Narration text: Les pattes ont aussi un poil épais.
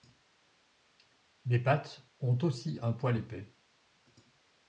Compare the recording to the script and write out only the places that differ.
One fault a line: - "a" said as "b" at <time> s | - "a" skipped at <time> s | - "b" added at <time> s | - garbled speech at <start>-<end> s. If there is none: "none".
none